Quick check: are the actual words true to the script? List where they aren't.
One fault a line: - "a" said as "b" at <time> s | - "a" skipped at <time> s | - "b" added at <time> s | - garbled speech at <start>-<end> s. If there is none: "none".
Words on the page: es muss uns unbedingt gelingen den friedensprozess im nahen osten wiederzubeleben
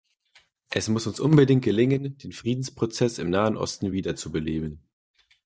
none